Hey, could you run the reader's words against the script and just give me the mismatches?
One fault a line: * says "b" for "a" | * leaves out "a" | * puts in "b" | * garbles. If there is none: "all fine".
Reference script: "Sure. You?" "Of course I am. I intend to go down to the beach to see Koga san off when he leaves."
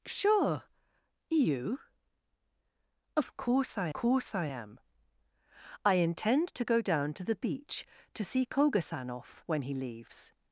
* puts in "course I"